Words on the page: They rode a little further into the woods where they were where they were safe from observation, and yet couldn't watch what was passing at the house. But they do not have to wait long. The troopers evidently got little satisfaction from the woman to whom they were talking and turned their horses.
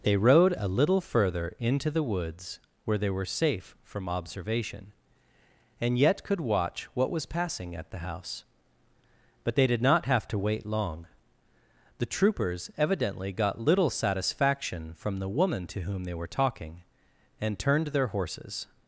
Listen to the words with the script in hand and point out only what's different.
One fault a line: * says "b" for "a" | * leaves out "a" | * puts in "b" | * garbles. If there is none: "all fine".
* leaves out "where they were"
* says "could" for "couldn't"
* says "did" for "do"